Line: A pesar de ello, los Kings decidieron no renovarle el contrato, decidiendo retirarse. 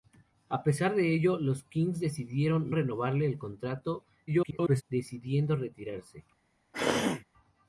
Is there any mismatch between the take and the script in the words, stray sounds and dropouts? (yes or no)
yes